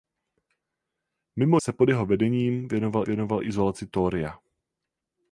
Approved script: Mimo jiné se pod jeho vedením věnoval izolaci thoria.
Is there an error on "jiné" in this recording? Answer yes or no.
yes